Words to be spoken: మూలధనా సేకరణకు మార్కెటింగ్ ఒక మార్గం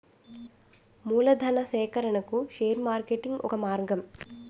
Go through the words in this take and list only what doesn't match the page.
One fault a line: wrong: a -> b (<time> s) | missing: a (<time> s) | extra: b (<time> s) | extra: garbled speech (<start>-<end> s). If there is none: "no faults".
extra: షేర్ (2.5 s)